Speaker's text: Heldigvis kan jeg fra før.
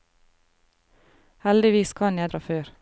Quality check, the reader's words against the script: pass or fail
pass